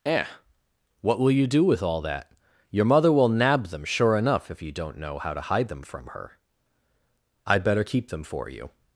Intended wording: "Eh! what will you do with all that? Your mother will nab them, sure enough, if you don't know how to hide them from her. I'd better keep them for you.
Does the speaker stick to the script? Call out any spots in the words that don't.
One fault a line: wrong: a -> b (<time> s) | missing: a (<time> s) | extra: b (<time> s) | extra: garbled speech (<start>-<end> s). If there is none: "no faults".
no faults